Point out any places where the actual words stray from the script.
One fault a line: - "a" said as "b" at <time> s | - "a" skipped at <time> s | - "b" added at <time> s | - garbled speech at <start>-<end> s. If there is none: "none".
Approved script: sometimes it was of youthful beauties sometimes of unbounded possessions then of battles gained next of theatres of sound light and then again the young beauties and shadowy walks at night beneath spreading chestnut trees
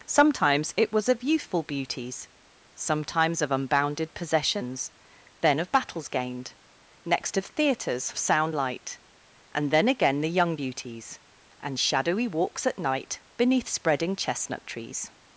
none